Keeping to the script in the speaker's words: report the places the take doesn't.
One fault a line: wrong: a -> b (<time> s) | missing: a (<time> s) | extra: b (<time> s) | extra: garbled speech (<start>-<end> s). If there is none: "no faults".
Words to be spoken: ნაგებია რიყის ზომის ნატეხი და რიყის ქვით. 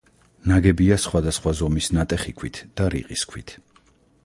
wrong: რიყის -> სხვადასხვა (1.0 s)
extra: ქვით (2.4 s)